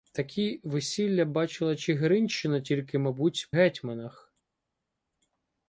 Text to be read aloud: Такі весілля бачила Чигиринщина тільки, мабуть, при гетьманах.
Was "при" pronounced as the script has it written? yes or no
no